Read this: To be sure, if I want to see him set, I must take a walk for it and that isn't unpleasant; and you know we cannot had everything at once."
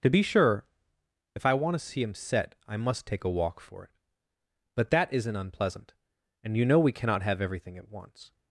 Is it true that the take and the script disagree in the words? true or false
true